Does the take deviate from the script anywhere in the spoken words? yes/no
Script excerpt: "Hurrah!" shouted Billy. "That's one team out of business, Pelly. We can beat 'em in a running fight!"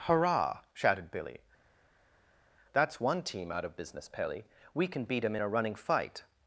no